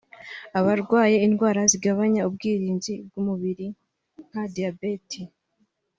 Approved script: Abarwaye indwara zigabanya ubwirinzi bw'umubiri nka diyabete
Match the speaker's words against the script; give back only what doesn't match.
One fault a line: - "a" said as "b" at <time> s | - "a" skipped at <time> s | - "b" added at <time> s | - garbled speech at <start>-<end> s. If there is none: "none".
none